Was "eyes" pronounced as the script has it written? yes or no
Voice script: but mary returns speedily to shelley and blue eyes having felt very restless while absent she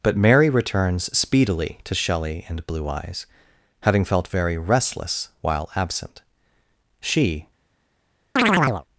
yes